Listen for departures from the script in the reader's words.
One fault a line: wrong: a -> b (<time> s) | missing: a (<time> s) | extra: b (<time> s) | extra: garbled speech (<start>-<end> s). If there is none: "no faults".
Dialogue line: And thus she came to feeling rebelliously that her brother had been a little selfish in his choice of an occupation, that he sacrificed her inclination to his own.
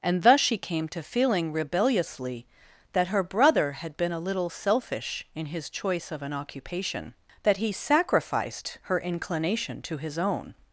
no faults